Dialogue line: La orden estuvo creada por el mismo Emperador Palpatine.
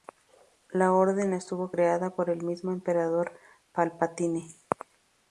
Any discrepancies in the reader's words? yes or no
no